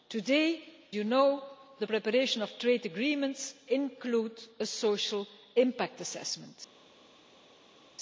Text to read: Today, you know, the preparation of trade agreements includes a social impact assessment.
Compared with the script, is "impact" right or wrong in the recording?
right